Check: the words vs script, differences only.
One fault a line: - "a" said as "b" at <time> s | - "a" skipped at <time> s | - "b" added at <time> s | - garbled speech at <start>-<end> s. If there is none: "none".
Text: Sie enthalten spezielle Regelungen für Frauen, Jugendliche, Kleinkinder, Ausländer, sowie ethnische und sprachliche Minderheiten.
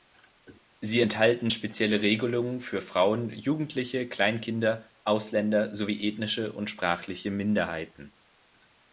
none